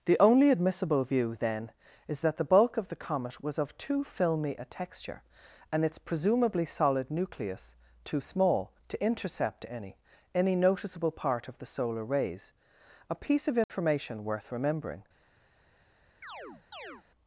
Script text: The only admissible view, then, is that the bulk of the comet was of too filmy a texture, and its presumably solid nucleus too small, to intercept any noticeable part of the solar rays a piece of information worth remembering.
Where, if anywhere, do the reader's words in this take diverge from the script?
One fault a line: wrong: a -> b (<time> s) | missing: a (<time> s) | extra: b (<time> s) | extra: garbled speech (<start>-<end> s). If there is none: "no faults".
extra: any (10.3 s)